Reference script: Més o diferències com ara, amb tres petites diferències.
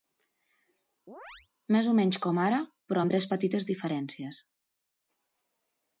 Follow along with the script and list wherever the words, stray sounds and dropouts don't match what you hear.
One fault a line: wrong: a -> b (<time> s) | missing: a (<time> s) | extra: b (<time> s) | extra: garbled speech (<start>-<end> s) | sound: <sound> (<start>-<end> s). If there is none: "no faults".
sound: chirp (1.1-1.5 s)
wrong: diferències -> menys (2.0 s)
extra: però (2.9 s)